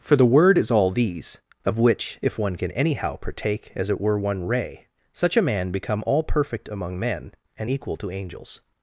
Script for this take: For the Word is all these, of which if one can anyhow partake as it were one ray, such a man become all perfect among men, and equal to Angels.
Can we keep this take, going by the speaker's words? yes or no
yes